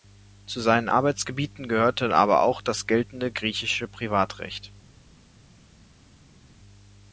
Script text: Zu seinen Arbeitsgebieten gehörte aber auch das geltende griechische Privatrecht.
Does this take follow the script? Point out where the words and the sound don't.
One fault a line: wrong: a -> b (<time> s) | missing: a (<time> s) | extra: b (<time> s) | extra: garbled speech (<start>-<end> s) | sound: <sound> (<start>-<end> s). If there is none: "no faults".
no faults